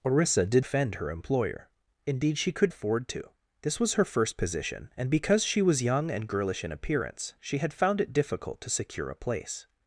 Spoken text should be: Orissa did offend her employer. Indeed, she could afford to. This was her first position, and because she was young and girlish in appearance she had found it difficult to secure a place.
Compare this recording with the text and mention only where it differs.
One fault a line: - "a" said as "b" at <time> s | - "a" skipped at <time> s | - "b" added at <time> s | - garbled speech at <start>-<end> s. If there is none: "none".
none